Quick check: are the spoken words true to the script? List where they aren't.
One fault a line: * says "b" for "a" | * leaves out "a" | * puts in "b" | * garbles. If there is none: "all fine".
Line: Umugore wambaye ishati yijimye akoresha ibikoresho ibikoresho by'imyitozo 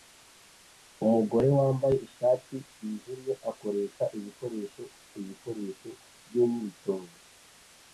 all fine